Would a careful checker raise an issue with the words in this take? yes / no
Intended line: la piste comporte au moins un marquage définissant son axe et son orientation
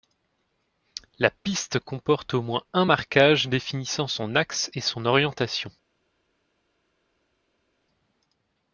no